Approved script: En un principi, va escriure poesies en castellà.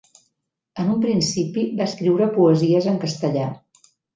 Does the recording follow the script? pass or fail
pass